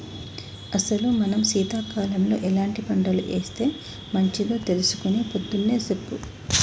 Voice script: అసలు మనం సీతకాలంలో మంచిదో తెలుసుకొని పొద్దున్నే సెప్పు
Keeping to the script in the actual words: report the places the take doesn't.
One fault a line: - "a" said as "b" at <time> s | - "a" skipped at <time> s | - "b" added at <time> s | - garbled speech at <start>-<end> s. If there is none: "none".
- "ఎలాంటి పంటలు ఏస్తే" added at 2.5 s